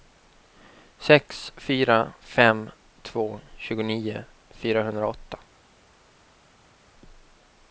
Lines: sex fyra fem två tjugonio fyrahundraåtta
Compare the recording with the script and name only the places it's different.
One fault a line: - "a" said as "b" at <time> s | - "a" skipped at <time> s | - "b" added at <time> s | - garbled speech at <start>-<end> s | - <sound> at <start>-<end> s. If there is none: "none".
none